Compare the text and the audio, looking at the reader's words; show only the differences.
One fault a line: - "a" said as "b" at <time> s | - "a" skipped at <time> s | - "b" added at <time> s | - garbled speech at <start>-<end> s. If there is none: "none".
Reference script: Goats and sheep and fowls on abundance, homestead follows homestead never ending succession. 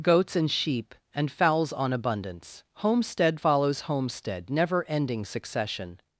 none